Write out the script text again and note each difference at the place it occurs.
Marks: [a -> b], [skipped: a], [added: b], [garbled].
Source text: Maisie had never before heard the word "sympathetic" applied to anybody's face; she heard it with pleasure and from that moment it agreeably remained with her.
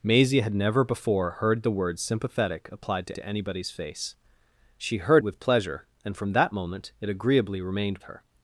Maisie had never before heard the word "sympathetic" applied to [added: to] anybody's face; she heard [skipped: it] with pleasure and from that moment it agreeably remained [skipped: with] her.